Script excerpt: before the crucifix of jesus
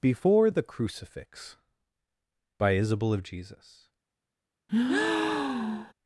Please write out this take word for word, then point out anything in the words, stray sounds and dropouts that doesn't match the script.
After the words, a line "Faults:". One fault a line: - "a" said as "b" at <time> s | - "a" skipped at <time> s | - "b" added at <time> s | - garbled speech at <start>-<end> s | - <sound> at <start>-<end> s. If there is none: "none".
before the crucifix by isabel of jesus
Faults:
- "by isabel" added at 2.6 s
- breath at 4.7-5.9 s